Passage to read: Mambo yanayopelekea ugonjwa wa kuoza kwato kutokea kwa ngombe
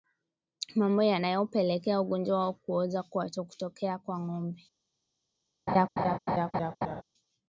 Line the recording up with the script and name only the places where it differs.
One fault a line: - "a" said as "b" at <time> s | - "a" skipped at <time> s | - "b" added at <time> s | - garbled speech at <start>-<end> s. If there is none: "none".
none